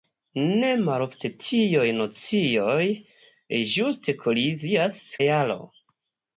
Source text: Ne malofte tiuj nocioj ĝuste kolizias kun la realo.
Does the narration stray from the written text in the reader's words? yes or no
yes